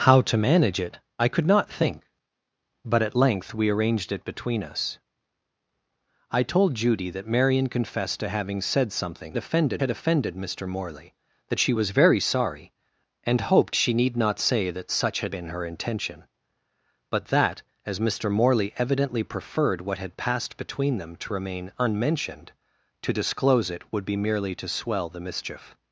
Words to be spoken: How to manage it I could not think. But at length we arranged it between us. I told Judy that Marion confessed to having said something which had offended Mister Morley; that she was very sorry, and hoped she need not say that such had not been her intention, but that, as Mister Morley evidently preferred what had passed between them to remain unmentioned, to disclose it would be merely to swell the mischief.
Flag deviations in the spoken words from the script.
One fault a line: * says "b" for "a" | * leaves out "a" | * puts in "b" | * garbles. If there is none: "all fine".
* says "offended" for "which"
* leaves out "not"